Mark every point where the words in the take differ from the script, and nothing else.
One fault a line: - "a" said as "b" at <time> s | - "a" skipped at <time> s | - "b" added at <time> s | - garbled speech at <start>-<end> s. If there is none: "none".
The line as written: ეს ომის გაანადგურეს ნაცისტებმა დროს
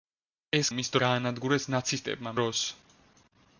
none